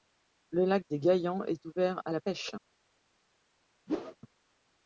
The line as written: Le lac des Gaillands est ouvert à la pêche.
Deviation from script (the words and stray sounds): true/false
true